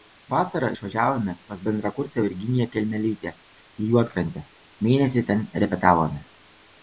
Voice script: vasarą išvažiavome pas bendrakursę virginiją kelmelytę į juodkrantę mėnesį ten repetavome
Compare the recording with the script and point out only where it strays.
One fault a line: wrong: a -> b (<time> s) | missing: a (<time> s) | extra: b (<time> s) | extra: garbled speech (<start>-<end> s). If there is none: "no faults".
no faults